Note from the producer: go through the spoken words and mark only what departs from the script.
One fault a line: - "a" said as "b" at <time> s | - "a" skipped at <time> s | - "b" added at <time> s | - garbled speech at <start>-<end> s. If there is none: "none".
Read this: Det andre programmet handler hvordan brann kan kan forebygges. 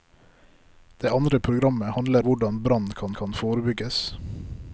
none